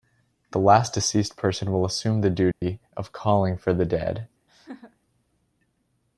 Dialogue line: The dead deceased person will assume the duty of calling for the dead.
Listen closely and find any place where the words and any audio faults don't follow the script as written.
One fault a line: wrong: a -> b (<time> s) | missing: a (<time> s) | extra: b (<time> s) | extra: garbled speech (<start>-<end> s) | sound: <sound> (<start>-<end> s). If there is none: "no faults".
wrong: dead -> last (0.6 s)
sound: dropout (2.5-2.6 s)
sound: laugh (4.5-5.0 s)